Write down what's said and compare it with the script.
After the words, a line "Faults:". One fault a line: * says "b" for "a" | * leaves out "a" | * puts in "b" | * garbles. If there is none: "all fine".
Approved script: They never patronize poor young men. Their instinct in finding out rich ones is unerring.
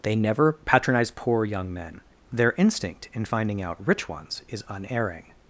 They never patronize poor young men. Their instinct in finding out rich ones is unerring.
Faults:
all fine